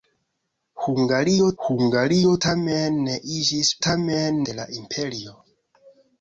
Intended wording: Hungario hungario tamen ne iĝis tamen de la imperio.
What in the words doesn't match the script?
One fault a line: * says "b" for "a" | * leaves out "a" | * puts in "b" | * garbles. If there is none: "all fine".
all fine